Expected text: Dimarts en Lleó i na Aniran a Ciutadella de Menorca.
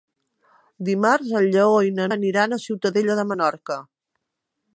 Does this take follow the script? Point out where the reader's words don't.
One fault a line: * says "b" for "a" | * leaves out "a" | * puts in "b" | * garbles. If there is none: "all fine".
all fine